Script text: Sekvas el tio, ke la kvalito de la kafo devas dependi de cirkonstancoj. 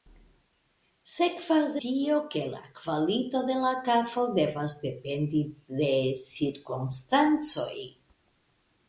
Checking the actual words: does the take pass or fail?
fail